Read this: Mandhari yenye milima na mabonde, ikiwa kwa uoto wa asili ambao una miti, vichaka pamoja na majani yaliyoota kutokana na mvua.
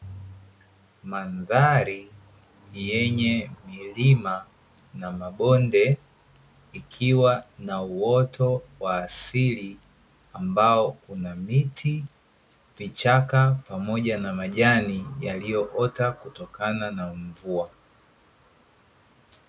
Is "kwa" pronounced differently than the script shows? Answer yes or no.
yes